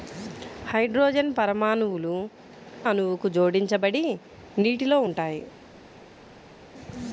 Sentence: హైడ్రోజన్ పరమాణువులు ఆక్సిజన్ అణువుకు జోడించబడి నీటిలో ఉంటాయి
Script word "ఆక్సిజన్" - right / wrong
wrong